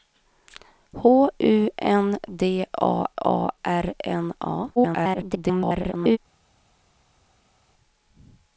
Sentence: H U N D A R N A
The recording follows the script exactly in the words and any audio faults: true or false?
false